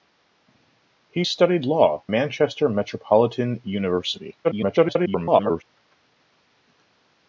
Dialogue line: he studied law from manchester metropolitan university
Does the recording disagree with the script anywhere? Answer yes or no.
yes